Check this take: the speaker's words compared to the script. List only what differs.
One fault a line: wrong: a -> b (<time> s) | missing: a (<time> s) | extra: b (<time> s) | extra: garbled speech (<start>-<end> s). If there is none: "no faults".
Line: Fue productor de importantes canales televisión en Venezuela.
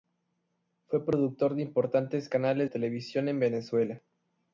no faults